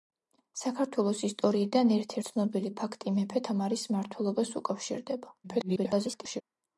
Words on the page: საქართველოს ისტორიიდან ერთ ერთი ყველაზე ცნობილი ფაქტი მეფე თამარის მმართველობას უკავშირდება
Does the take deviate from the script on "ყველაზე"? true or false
true